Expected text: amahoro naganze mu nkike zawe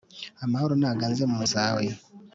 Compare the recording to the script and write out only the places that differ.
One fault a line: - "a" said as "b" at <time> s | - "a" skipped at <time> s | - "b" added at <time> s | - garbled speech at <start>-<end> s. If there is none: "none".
- "nkike" skipped at 1.4 s